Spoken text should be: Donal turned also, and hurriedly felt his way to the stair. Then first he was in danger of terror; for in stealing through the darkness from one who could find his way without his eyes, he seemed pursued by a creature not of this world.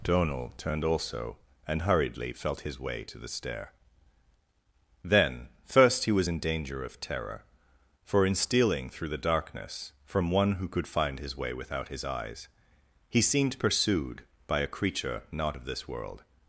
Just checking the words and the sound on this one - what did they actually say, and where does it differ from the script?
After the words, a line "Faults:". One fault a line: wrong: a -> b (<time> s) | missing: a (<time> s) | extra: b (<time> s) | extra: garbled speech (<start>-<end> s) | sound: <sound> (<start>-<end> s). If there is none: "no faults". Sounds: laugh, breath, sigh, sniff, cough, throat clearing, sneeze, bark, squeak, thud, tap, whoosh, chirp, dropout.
Donal turned also, and hurriedly felt his way to the stair. Then first he was in danger of terror; for in stealing through the darkness from one who could find his way without his eyes, he seemed pursued by a creature not of this world.
Faults:
no faults